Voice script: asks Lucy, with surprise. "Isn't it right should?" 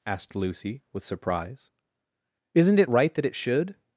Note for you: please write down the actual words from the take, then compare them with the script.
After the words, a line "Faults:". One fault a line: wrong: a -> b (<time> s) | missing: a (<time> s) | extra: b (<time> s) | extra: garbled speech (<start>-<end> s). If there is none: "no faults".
asked Lucy, with surprise. "Isn't it right that it should?"
Faults:
wrong: asks -> asked (0.1 s)
extra: that it (3.1 s)